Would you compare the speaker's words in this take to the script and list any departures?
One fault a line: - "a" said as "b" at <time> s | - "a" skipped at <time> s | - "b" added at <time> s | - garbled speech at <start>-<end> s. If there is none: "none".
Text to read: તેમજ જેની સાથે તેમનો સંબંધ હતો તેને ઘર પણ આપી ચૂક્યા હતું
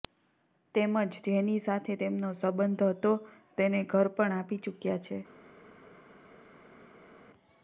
- "હતું" said as "છે" at 5.0 s